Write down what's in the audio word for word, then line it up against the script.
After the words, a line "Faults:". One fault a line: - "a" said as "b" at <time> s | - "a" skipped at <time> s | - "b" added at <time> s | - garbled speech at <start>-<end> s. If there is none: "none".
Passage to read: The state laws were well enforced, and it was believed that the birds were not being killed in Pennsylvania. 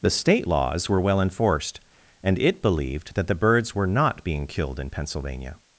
The state laws were well enforced, and it believed that the birds were not being killed in Pennsylvania.
Faults:
- "was" skipped at 2.6 s